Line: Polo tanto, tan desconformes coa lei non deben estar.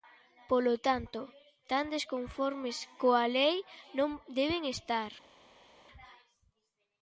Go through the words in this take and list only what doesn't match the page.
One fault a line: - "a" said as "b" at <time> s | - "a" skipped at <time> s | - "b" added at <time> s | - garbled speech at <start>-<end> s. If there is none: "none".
none